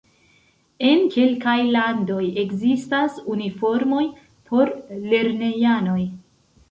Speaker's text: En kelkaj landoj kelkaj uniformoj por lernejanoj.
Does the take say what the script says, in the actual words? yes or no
no